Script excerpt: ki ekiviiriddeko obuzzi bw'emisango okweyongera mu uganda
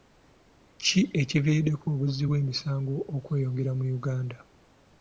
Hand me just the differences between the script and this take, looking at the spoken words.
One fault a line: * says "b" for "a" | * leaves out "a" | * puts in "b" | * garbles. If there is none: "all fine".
all fine